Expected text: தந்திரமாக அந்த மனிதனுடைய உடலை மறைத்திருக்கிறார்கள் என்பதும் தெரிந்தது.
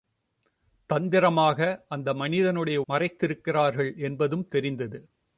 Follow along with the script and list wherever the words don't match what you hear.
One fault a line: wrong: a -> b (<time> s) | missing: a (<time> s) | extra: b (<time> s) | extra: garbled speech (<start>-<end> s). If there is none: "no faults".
missing: உடலை (2.8 s)